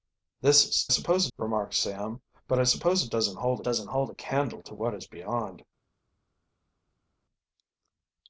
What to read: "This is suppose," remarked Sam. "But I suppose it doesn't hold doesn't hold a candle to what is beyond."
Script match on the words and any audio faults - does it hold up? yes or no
yes